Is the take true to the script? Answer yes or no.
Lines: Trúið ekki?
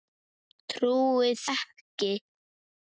yes